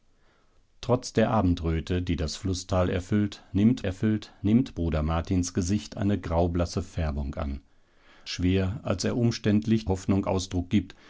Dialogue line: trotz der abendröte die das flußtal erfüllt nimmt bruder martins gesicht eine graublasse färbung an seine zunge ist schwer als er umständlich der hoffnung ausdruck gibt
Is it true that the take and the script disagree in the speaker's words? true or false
true